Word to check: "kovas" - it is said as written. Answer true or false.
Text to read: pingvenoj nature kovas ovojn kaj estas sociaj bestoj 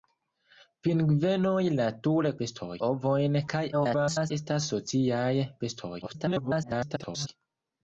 false